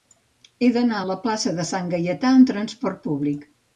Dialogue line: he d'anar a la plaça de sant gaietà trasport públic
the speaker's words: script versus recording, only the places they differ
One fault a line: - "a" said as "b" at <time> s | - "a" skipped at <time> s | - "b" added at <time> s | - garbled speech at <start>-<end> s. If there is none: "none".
- "amb" added at 2.4 s